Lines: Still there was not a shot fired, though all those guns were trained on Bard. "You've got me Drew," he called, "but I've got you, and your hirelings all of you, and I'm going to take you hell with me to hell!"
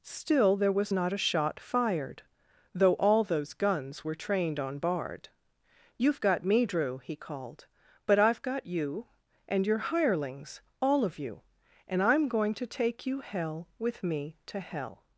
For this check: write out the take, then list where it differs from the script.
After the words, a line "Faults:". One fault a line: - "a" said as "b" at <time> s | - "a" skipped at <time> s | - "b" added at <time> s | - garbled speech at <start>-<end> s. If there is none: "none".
Still there was not a shot fired, though all those guns were trained on Bard. "You've got me Drew," he called, "but I've got you, and your hirelings all of you, and I'm going to take you hell with me to hell!"
Faults:
none